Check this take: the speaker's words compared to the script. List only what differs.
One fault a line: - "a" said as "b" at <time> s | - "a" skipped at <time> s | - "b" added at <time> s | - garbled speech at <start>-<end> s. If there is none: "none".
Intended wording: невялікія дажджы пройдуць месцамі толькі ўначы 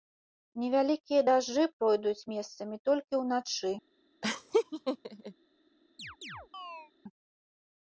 none